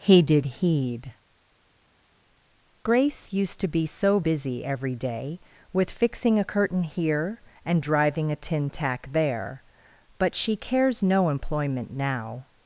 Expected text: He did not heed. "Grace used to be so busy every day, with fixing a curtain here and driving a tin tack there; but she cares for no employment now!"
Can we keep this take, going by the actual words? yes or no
no